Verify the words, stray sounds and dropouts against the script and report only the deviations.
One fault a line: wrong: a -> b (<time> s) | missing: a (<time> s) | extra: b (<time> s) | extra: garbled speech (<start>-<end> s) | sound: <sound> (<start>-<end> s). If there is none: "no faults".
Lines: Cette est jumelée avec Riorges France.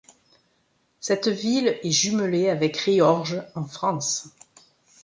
extra: ville (1.3 s)
extra: en (3.6 s)